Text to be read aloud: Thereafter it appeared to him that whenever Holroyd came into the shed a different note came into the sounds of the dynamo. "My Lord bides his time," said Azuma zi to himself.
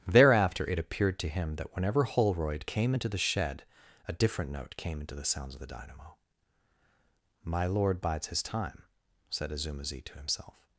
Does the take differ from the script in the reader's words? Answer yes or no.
no